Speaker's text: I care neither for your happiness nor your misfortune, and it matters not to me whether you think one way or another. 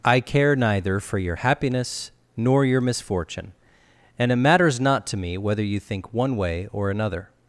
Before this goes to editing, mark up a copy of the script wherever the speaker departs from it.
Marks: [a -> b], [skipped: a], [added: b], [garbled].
I care neither for your happiness nor your misfortune, and it matters not to me whether you think one way or another.